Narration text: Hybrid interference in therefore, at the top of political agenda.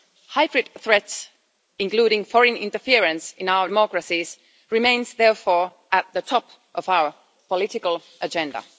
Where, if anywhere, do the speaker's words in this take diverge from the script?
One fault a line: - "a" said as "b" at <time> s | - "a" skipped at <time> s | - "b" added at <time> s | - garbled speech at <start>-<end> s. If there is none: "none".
- "threats including foreign" added at 0.8 s
- "our democracies remain" added at 3.5 s
- "our" added at 6.9 s